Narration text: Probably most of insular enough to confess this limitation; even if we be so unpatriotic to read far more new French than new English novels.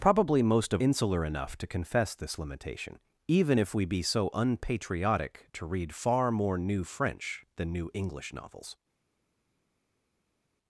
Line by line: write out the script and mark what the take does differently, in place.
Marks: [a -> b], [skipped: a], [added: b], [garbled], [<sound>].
Probably most of insular enough to confess this limitation; even if we be so unpatriotic to read far more new French than new English novels.